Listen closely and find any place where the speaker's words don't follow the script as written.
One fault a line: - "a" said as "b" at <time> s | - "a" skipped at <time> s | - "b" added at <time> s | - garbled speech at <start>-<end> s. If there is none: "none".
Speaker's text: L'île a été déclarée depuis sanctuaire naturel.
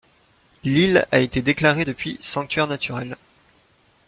none